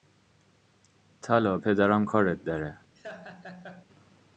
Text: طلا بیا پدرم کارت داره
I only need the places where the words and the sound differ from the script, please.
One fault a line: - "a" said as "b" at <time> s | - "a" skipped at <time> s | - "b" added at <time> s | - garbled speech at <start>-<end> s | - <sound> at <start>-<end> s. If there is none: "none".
- "بیا" skipped at 1.6 s
- laugh at 3.0-3.9 s